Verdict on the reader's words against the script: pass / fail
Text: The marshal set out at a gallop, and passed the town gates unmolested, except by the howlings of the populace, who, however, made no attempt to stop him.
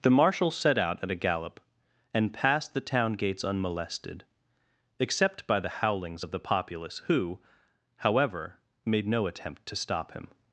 pass